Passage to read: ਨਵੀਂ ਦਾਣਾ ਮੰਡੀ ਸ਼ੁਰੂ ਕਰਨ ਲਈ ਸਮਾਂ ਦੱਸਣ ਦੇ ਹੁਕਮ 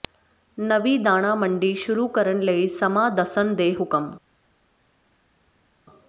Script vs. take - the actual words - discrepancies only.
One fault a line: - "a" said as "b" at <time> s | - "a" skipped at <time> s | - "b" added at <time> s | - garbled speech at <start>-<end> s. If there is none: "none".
none